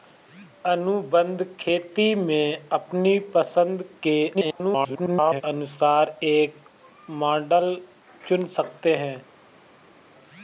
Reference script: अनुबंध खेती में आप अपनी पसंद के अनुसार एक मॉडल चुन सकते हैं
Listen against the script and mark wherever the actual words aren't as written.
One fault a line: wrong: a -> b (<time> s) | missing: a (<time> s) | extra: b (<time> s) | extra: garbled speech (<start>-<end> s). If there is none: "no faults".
missing: आप (2.7 s)
extra: garbled speech (4.3-5.4 s)